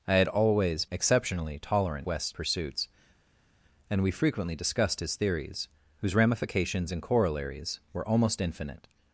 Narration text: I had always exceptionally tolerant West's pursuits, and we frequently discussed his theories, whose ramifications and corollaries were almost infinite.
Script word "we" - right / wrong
right